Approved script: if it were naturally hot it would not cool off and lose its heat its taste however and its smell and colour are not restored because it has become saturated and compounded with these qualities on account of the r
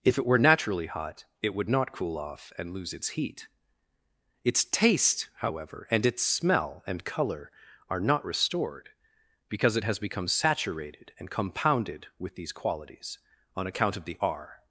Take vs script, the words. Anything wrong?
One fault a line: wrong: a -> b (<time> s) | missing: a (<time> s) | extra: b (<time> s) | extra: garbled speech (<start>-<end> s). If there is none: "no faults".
no faults